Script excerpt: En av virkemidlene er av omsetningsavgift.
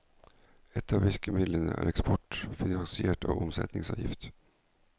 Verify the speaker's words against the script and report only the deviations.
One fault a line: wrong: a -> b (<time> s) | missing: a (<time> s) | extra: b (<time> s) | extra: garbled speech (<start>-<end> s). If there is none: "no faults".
wrong: En -> Et (0.8 s)
extra: eksport finansiert (1.9 s)